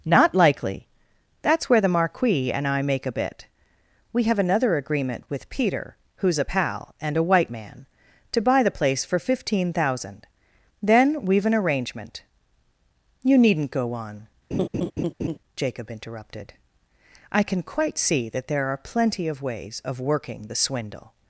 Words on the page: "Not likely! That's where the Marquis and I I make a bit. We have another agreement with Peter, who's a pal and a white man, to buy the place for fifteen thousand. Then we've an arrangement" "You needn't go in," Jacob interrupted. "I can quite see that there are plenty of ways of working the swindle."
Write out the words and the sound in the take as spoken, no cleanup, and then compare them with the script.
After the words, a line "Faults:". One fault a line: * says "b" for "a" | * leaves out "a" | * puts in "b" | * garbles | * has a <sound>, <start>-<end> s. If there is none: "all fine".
"Not likely! That's where the Marquis and I make a bit. We have another agreement with Peter, who's a pal and a white man, to buy the place for fifteen thousand. Then we've an arrangement" "You needn't go on," Jacob interrupted. "I can quite see that there are plenty of ways of working the swindle."
Faults:
* leaves out "I"
* says "on" for "in"
* has a laugh, 14.5-15.4 s